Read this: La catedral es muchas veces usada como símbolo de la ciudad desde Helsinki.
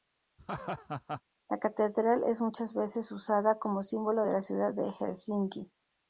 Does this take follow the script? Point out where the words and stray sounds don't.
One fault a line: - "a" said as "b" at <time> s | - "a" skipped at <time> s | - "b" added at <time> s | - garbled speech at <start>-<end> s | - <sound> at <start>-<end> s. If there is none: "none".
- laugh at 0.4-1.2 s
- "desde" said as "de" at 4.7 s